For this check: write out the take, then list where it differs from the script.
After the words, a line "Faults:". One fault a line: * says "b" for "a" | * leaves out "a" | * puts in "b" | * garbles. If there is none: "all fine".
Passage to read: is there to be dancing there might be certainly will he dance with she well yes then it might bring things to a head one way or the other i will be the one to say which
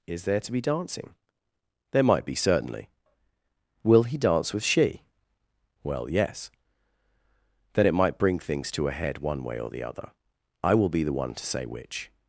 is there to be dancing there might be certainly will he dance with she well yes then it might bring things to a head one way or the other i will be the one to say which
Faults:
all fine